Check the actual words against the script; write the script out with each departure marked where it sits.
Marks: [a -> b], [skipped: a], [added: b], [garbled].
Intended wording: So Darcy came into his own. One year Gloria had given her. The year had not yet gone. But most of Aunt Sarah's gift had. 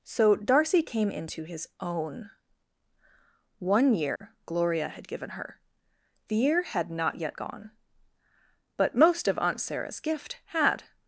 So Darcy came into his own. One year Gloria had given her. The year had not yet gone. But most of Aunt Sarah's gift had.